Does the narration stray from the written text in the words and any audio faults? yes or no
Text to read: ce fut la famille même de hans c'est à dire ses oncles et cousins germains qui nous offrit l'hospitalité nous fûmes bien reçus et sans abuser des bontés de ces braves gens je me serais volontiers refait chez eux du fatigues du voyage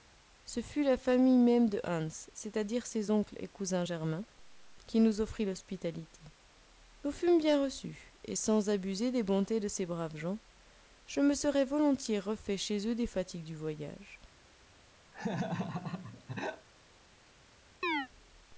yes